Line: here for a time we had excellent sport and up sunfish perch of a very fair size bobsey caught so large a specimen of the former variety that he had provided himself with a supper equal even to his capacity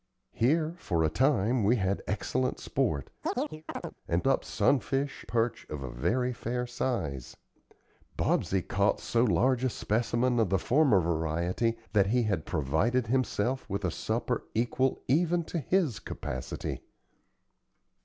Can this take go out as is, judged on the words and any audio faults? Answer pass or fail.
fail